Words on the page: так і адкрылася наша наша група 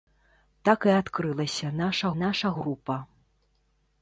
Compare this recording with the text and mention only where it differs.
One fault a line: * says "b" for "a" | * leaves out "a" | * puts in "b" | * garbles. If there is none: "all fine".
all fine